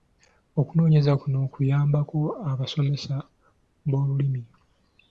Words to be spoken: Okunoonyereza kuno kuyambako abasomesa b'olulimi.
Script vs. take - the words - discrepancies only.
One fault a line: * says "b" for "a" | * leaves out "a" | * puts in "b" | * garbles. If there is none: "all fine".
all fine